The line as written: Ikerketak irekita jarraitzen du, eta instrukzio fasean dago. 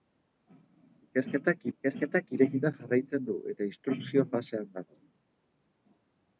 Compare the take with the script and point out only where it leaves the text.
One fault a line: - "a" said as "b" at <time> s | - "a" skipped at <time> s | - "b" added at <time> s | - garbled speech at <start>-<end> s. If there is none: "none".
- "ikerketak" added at 1.8 s